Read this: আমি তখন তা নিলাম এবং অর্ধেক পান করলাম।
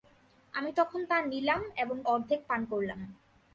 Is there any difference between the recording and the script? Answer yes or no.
no